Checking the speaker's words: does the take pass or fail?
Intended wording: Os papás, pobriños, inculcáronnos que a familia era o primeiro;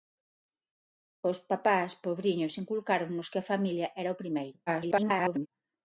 fail